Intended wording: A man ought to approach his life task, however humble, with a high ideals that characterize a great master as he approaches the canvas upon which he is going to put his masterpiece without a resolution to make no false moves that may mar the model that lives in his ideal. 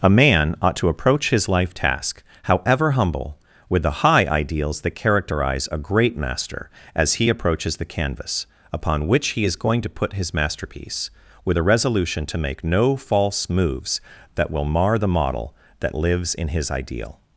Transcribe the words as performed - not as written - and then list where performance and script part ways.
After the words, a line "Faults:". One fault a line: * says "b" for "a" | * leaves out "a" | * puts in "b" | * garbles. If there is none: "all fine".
A man ought to approach his life task, however humble, with the high ideals that characterize a great master as he approaches the canvas upon which he is going to put his masterpiece with a resolution to make no false moves that will mar the model that lives in his ideal.
Faults:
* says "the" for "a"
* says "with" for "without"
* says "will" for "may"